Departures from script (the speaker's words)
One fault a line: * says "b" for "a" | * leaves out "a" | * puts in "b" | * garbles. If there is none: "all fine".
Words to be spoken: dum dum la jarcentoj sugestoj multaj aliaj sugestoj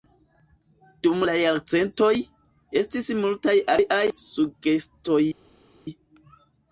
* leaves out "dum"
* says "estis" for "sugestoj"